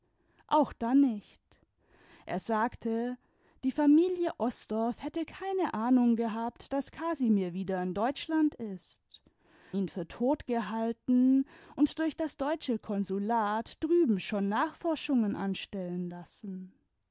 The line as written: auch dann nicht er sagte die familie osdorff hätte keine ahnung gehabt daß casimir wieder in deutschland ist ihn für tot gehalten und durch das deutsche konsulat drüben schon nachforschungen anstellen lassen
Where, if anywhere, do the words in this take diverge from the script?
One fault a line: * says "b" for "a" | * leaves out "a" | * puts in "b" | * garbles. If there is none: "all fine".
all fine